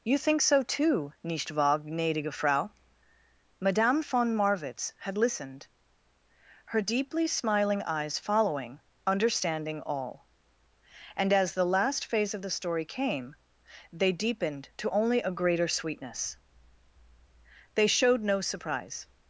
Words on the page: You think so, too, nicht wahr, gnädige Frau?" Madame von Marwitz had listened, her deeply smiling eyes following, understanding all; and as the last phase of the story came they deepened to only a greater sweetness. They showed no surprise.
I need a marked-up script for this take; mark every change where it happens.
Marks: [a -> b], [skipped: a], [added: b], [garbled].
You think so, too, nicht wahr, gnädige Frau?" Madame von Marwitz had listened, her deeply smiling eyes following, understanding all; and as the last phase of the story came they deepened to only a greater sweetness. They showed no surprise.